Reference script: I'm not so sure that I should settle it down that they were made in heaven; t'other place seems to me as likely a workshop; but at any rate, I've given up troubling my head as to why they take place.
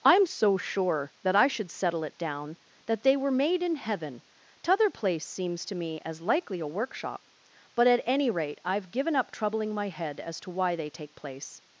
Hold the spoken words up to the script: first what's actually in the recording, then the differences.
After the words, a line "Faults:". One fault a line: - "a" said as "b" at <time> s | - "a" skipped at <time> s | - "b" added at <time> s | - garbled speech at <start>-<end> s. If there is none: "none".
I'm so sure that I should settle it down that they were made in heaven; t'other place seems to me as likely a workshop; but at any rate, I've given up troubling my head as to why they take place.
Faults:
- "not" skipped at 0.2 s